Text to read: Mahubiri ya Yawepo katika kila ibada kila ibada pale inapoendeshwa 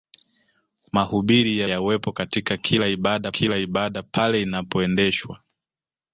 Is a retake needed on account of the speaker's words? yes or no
no